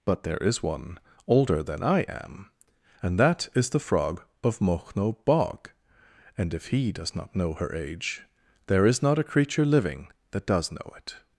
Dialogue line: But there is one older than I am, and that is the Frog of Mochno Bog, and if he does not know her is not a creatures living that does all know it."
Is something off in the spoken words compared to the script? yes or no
yes